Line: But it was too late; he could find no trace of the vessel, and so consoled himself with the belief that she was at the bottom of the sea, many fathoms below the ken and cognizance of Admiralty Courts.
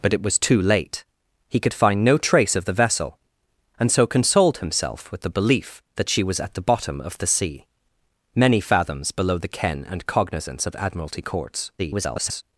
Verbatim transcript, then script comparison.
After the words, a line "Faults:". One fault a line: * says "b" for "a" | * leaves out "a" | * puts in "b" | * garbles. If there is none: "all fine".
But it was too late; he could find no trace of the vessel, and so consoled himself with the belief that she was at the bottom of the sea, many fathoms below the ken and cognizance of Admiralty Courts. [garbled]
Faults:
* garbles